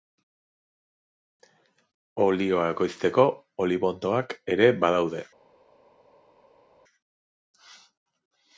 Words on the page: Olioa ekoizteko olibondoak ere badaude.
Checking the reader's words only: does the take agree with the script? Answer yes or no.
yes